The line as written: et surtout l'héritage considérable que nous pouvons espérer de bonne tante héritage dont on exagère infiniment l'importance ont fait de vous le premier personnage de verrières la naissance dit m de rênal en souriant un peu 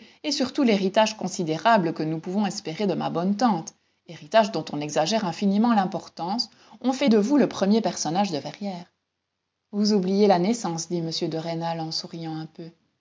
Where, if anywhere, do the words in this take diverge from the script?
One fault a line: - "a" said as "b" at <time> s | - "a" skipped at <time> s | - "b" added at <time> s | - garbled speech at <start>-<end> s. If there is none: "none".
- "ma" added at 2.9 s
- "vous oubliez" added at 9.7 s